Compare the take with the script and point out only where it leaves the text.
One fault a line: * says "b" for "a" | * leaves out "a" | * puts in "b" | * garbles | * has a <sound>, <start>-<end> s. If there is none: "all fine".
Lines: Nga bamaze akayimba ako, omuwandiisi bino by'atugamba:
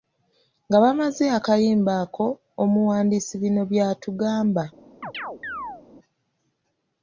* has a chirp, 5.0-5.8 s